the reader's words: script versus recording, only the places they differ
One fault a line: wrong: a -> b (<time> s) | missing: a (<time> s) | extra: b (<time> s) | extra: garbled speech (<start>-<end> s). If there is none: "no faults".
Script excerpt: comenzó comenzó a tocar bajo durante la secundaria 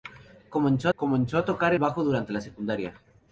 no faults